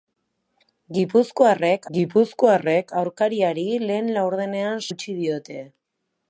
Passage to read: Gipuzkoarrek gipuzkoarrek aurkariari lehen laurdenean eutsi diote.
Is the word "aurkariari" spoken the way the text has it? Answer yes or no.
yes